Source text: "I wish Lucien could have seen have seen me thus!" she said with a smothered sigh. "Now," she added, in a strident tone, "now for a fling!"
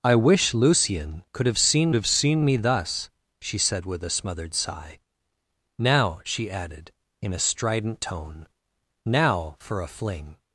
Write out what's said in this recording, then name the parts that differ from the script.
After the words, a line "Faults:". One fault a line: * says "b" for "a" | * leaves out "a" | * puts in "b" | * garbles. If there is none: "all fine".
"I wish Lucien could have seen have seen me thus!" she said with a smothered sigh. "Now," she added, in a strident tone, "now for a fling!"
Faults:
all fine